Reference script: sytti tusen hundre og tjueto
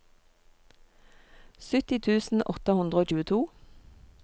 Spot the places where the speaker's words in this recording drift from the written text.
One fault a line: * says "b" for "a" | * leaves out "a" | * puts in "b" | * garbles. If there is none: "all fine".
* puts in "åtte"